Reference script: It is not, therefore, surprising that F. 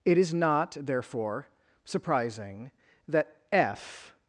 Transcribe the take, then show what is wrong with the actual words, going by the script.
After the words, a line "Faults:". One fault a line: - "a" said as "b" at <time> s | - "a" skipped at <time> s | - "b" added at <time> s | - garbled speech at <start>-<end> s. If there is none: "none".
It is not, therefore, surprising that F.
Faults:
none